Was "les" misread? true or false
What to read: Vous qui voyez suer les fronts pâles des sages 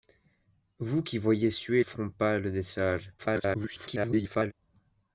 true